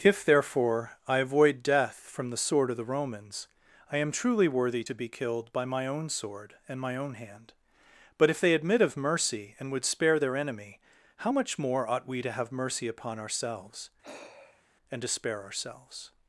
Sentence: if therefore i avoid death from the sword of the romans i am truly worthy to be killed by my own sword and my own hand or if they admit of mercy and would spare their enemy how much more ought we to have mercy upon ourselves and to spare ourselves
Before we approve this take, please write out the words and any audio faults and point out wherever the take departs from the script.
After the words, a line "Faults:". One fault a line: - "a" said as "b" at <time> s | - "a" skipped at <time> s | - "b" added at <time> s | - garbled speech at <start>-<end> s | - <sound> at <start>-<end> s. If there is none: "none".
if therefore i avoid death from the sword of the romans i am truly worthy to be killed by my own sword and my own hand but if they admit of mercy and would spare their enemy how much more ought we to have mercy upon ourselves and to spare ourselves
Faults:
- "or" said as "but" at 8.2 s
- sigh at 14.0-14.6 s